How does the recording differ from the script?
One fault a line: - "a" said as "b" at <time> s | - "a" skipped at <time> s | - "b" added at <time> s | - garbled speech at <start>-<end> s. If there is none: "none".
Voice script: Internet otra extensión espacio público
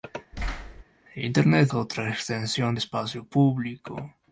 none